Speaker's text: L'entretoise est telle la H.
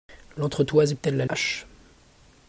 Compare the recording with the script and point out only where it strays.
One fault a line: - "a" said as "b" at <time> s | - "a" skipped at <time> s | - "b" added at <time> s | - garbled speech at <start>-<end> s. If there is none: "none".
none